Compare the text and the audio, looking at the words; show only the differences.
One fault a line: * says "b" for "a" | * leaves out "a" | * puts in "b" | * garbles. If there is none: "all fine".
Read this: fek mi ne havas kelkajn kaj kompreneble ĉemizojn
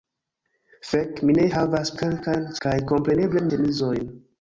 all fine